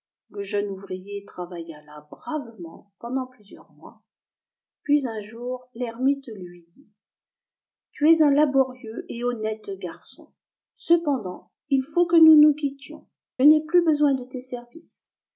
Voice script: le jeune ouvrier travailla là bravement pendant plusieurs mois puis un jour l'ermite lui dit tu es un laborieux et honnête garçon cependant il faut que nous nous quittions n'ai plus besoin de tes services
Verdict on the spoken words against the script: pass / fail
pass